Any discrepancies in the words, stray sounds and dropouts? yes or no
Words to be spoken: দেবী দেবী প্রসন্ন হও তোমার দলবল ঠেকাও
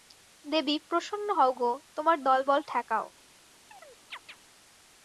yes